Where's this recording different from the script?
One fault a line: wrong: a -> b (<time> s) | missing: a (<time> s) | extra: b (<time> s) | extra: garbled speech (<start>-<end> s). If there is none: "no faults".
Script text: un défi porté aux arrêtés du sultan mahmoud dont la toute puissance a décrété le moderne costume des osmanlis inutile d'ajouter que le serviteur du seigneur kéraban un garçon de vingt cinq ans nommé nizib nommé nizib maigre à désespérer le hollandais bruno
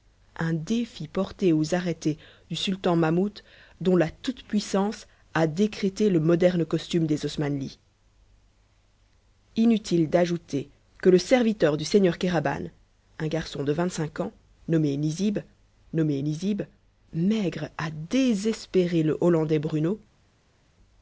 no faults